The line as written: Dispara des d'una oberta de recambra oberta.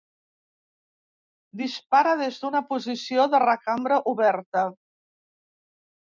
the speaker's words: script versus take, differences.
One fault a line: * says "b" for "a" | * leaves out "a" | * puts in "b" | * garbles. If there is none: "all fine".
* says "posició" for "oberta"